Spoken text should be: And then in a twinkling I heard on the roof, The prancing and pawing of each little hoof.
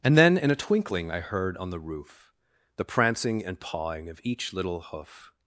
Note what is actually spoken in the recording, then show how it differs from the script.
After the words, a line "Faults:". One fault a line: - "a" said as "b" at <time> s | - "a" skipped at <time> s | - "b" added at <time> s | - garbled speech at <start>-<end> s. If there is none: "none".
And then in a twinkling I heard on the roof, The prancing and pawing of each little hoof.
Faults:
none